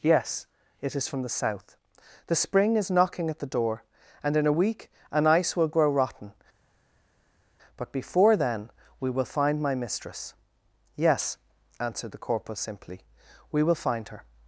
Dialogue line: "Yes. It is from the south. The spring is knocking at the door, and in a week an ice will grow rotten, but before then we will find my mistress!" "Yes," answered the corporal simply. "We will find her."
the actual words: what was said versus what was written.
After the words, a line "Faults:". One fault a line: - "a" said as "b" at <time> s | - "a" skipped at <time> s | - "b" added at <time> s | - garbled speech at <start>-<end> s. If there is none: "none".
"Yes. It is from the south. The spring is knocking at the door, and in a week an ice will grow rotten, but before then we will find my mistress!" "Yes," answered the corporal simply. "We will find her."
Faults:
none